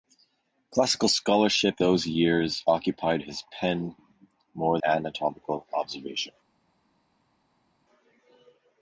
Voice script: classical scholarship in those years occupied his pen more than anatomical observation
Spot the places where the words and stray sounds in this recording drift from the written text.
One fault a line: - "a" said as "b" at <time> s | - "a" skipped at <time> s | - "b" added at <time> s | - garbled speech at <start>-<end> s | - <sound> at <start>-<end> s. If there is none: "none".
- "in" skipped at 1.8 s
- "than" skipped at 4.8 s